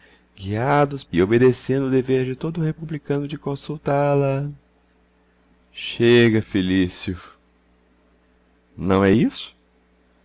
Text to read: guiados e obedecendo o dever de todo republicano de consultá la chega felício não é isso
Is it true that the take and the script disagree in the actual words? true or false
false